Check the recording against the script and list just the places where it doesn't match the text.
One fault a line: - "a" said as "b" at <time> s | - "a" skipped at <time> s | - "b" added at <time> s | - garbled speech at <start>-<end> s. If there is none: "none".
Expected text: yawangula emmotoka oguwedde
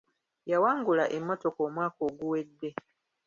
- "omwaka" added at 1.7 s